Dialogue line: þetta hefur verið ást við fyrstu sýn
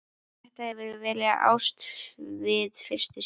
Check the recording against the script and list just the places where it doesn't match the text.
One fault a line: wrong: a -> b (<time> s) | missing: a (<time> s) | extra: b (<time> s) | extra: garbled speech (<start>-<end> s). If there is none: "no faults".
no faults